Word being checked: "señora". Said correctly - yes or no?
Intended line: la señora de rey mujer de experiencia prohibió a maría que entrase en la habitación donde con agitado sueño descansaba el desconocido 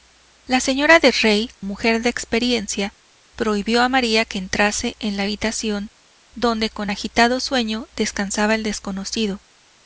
yes